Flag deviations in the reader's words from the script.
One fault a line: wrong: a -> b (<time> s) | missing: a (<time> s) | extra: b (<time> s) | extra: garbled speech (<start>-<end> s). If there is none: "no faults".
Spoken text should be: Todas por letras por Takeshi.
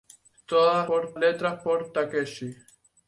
no faults